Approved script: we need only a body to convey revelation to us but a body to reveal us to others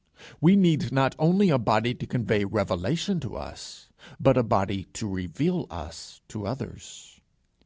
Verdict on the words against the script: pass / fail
fail